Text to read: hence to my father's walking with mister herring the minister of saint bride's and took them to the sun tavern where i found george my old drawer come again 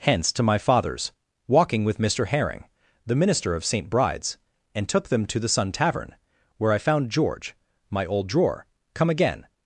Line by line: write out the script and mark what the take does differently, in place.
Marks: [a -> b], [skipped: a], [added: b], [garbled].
hence to my father's walking with mister herring the minister of saint bride's and took them to the sun tavern where i found george my old drawer come again